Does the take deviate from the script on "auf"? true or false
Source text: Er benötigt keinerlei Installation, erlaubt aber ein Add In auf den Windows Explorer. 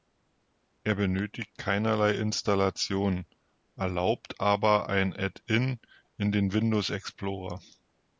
true